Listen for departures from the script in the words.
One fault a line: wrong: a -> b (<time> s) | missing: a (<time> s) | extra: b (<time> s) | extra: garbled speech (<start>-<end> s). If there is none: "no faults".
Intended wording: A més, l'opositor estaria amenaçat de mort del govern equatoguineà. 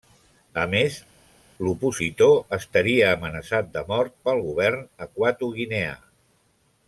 wrong: del -> pel (4.3 s)